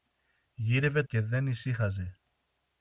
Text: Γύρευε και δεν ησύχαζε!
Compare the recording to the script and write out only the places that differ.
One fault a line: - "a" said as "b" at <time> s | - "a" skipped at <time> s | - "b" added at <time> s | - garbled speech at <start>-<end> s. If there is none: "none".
none